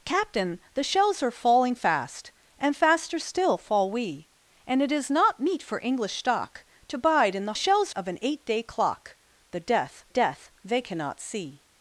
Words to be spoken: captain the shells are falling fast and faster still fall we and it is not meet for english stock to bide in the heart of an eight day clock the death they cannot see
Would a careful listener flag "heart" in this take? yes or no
yes